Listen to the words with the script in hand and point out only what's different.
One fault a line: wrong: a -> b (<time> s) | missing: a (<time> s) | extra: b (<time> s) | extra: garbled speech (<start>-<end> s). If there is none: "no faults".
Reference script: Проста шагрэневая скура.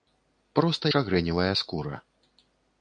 no faults